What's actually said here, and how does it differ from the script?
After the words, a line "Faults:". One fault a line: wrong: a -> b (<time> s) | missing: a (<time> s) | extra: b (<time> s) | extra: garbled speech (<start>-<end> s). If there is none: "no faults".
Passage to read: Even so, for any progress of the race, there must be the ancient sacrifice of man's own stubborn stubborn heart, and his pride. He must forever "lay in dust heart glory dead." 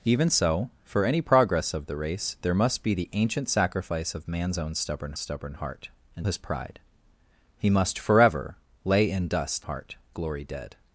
Even so, for any progress of the race, there must be the ancient sacrifice of man's own stubborn stubborn heart, and his pride. He must forever "lay in dust heart glory dead."
Faults:
no faults